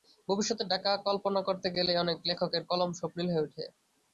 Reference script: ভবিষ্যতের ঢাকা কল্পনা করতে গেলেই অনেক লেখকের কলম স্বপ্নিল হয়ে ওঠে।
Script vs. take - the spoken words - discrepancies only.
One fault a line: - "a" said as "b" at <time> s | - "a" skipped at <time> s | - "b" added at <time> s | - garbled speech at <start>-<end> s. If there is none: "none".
none